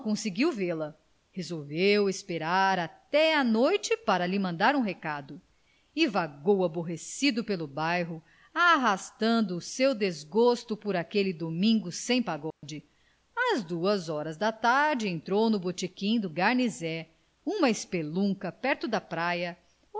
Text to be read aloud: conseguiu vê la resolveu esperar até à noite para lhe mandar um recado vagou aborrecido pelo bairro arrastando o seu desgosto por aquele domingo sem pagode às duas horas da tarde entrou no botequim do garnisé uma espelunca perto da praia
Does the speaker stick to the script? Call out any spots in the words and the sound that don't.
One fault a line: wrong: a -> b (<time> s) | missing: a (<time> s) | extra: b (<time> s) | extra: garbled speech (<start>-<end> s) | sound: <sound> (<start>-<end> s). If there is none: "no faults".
extra: e (6.0 s)
sound: dropout (12.5-12.6 s)